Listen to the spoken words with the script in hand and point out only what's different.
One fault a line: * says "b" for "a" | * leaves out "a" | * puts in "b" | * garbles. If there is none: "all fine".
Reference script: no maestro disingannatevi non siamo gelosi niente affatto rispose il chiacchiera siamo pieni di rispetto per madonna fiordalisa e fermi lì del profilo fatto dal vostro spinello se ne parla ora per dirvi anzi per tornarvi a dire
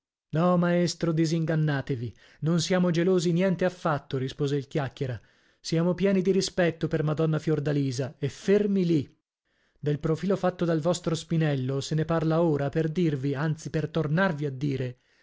all fine